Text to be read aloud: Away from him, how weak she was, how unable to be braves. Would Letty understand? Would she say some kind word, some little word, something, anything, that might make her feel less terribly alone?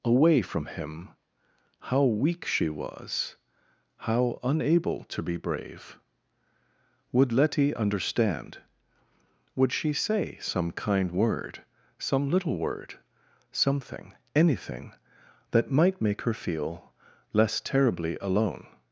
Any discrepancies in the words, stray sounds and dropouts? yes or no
yes